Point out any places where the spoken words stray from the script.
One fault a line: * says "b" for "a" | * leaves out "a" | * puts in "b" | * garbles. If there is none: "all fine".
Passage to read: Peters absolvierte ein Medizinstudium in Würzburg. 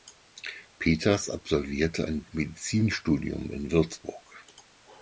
all fine